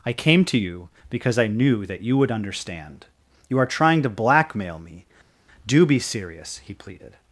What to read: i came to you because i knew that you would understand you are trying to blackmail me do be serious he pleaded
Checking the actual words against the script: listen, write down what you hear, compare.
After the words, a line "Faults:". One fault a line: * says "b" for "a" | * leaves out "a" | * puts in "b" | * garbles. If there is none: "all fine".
i came to you because i knew that you would understand you are trying to blackmail me do be serious he pleaded
Faults:
all fine